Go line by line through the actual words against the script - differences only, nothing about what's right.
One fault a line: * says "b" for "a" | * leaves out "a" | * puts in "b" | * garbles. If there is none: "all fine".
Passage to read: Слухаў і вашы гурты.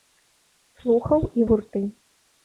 * leaves out "вашы"